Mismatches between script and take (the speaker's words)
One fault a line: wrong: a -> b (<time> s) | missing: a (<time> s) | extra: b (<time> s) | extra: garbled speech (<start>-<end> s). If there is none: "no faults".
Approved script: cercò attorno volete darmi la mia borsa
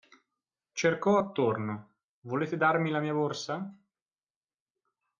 no faults